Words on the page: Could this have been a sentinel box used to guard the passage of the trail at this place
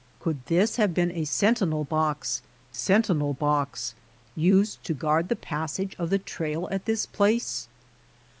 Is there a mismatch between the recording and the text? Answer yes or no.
yes